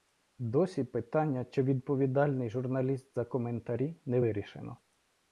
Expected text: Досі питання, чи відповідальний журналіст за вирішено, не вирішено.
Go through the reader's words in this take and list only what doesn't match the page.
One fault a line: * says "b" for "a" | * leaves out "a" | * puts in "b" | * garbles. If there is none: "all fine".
* says "коментарі" for "вирішено"